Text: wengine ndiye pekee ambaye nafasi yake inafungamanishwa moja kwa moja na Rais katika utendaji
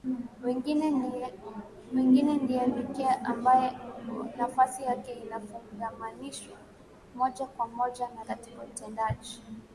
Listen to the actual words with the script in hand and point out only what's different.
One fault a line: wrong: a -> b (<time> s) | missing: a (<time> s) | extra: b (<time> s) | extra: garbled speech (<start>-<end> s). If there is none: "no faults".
missing: Rais (8.2 s)